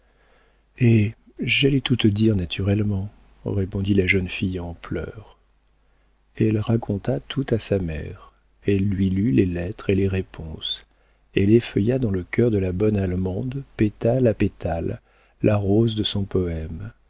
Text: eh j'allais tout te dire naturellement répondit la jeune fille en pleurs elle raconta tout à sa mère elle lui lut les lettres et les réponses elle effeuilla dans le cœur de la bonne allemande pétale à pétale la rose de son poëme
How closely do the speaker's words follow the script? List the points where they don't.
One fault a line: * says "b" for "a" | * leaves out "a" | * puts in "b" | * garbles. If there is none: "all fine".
all fine